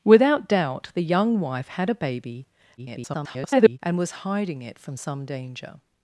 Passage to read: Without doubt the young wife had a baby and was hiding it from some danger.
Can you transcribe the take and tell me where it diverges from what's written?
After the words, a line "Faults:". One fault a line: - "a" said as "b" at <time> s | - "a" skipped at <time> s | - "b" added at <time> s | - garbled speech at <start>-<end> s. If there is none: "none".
Without doubt the young wife had a baby [garbled] and was hiding it from some danger.
Faults:
- garbled speech at 2.8-3.8 s